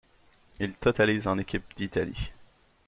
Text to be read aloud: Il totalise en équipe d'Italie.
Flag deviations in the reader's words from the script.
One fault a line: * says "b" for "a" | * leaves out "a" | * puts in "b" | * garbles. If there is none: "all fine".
all fine